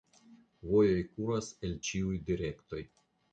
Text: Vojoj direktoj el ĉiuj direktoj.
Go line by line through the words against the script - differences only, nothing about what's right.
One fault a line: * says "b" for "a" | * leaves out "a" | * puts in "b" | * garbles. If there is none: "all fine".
* says "kuras" for "direktoj"